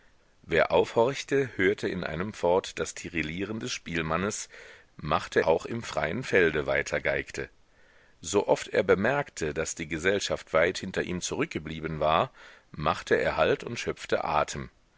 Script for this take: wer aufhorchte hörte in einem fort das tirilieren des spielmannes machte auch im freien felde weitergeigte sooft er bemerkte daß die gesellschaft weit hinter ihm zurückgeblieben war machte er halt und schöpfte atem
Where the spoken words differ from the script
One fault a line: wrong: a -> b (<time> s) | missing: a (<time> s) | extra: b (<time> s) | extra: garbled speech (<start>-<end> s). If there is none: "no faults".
no faults